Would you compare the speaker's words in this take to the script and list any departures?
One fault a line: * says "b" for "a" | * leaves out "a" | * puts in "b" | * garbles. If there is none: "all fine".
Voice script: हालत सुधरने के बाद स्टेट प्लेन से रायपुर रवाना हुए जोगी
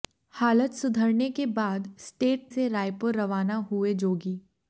* leaves out "प्लेन"